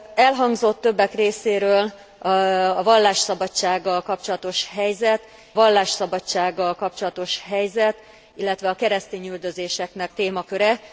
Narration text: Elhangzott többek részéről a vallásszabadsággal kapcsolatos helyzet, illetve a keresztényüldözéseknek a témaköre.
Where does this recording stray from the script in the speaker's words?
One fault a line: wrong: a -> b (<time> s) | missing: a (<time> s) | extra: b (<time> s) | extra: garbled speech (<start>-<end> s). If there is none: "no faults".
extra: vallásszabadsággal kapcsolatos helyzet (5.5 s)
missing: a (10.1 s)